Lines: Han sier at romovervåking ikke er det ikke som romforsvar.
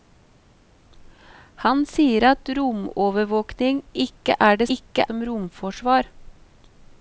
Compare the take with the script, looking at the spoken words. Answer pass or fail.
pass